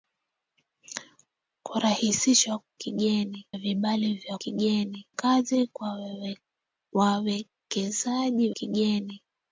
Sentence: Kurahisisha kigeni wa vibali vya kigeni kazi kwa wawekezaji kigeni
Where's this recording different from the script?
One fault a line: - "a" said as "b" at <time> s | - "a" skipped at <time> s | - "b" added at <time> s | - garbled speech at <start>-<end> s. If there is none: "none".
none